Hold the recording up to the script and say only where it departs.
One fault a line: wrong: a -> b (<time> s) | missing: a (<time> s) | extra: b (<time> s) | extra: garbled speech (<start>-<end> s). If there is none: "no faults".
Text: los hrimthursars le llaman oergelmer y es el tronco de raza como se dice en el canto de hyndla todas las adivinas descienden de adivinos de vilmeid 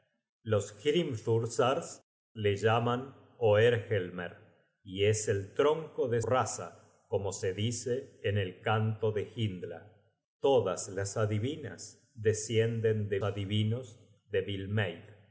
no faults